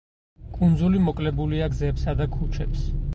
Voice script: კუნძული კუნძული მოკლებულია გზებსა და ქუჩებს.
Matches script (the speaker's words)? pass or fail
fail